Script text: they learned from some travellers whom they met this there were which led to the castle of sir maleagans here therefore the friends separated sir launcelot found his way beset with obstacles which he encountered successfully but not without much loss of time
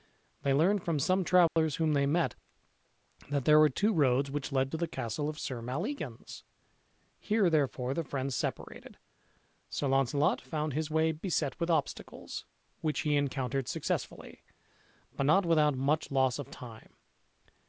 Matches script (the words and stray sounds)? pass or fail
fail